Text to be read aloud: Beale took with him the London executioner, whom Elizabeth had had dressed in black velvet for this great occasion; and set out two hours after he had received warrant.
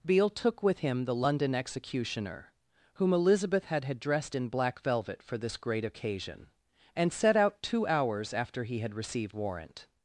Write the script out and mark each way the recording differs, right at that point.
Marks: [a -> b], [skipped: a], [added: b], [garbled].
Beale took with him the London executioner, whom Elizabeth had had dressed in black velvet for this great occasion; and set out two hours after he had received warrant.